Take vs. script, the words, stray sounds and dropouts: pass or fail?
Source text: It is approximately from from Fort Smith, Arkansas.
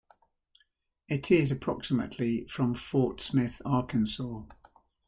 fail